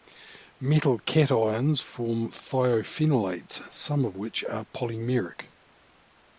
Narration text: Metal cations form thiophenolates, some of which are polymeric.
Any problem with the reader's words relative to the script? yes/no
no